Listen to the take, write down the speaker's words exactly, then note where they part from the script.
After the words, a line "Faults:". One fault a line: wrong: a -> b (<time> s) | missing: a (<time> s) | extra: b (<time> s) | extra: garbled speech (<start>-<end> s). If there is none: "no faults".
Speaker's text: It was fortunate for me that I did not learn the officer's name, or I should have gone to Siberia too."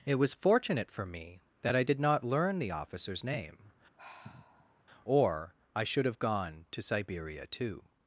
It was fortunate for me that I did not learn the officer's name, or I should have gone to Siberia too."
Faults:
no faults